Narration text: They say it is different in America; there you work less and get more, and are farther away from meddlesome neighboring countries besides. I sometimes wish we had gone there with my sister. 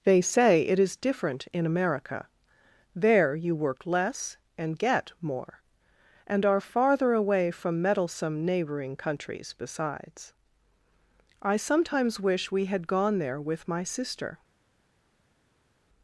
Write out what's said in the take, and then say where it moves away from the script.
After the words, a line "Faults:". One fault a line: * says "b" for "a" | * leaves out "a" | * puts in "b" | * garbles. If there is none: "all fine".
They say it is different in America; there you work less and get more, and are farther away from meddlesome neighboring countries besides. I sometimes wish we had gone there with my sister.
Faults:
all fine